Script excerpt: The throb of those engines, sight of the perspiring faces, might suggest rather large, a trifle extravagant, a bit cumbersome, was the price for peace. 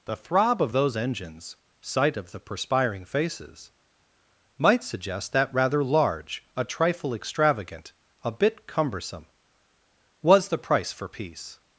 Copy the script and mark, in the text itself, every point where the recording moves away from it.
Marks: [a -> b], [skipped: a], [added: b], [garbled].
The throb of those engines, sight of the perspiring faces, might suggest [added: that] rather large, a trifle extravagant, a bit cumbersome, was the price for peace.